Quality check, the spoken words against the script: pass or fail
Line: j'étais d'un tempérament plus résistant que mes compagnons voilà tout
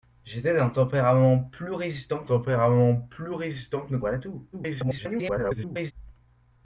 fail